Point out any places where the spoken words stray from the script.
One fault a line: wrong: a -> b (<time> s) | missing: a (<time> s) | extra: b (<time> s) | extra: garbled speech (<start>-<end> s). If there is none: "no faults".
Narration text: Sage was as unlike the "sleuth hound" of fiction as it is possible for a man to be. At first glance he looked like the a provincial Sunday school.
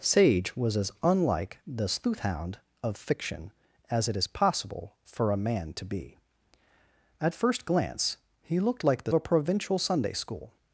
no faults